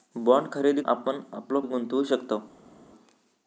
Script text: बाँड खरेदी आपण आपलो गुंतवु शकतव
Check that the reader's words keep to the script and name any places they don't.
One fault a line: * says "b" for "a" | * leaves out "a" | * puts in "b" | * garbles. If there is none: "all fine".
all fine